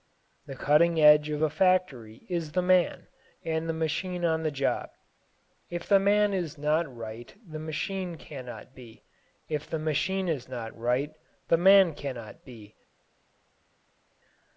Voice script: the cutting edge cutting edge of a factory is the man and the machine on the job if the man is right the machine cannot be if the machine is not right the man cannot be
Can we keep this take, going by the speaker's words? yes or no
no